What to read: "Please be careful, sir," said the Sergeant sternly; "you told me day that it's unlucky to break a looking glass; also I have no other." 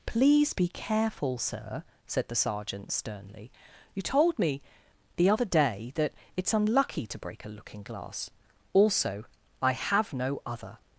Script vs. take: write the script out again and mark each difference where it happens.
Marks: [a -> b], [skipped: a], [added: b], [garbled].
"Please be careful, sir," said the Sergeant sternly; "you told me [added: the other] day that it's unlucky to break a looking glass; also I have no other."